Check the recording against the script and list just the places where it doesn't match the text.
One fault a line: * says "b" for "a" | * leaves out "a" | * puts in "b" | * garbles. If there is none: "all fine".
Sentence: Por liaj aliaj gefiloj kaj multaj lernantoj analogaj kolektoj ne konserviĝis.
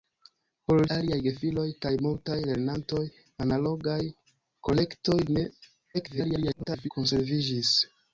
* leaves out "liaj"
* garbles